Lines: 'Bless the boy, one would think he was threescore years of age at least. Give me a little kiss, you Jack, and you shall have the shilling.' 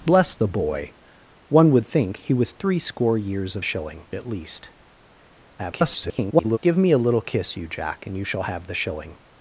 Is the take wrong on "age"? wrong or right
wrong